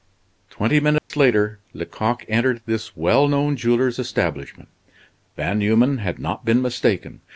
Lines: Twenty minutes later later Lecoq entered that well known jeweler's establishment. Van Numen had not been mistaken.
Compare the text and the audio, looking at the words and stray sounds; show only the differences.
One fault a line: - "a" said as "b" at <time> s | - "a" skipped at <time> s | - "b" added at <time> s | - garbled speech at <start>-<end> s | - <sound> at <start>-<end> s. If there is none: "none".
- dropout at 1.0-1.1 s
- "later" skipped at 1.6 s
- "that" said as "this" at 2.6 s